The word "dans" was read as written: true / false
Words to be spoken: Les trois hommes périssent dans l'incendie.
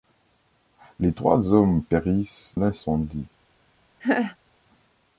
false